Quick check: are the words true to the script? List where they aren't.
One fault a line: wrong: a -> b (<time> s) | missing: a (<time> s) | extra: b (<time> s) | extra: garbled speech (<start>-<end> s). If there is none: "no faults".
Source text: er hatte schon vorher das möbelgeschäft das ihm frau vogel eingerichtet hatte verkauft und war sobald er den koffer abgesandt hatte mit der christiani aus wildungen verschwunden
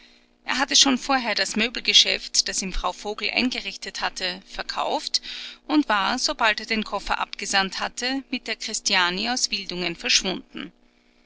no faults